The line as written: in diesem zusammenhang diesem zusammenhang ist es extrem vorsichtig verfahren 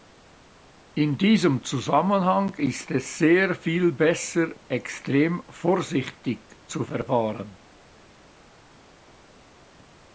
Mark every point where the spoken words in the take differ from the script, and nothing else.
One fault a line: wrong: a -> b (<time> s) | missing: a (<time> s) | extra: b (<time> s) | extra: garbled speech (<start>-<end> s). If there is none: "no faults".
wrong: diesem zusammenhang ist es -> ist es sehr viel besser (2.5 s)
extra: zu (6.7 s)